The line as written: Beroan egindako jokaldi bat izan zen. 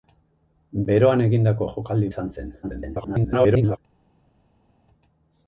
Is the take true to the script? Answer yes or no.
no